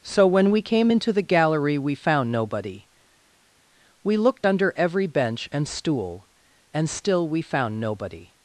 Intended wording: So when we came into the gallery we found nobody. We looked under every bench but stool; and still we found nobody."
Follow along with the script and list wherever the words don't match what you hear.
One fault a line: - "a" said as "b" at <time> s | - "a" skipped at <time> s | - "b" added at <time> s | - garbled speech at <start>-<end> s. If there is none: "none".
- "but" said as "and" at 5.5 s